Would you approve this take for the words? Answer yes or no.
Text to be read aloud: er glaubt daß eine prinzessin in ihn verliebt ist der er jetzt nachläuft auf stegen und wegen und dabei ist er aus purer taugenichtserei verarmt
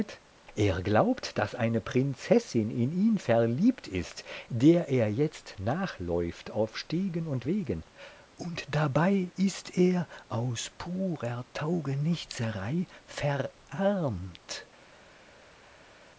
yes